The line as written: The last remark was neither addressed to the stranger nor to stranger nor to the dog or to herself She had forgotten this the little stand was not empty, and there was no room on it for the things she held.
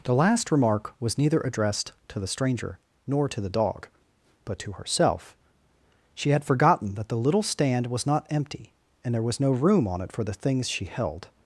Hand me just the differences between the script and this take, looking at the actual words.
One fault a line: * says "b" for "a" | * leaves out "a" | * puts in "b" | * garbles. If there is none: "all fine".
* leaves out "stranger nor to"
* says "but" for "or"
* says "that" for "this"